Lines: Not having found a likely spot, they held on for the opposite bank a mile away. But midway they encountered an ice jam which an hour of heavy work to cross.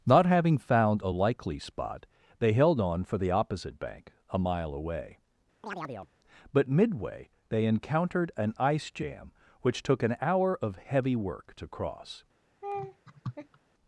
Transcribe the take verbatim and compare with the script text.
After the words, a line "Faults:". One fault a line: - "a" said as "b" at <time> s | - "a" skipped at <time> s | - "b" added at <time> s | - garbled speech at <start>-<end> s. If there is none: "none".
Not having found a likely spot, they held on for the opposite bank a mile away. But midway they encountered an ice jam which took an hour of heavy work to cross.
Faults:
- "took" added at 9.8 s